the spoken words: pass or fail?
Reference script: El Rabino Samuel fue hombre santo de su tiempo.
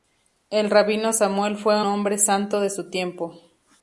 pass